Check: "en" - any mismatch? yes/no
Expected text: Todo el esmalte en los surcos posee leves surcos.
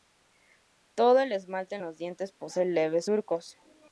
no